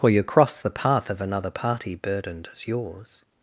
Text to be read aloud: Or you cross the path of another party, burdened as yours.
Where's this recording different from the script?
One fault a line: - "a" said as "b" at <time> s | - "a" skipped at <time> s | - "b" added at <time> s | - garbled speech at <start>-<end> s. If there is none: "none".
- "Or" said as "For" at 0.0 s